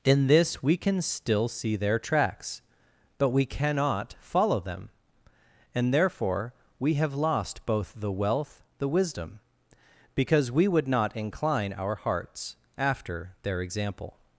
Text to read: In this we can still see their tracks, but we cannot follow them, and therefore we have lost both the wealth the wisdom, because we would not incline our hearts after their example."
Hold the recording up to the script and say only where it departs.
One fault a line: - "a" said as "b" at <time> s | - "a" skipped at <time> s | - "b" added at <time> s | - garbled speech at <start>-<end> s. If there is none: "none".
none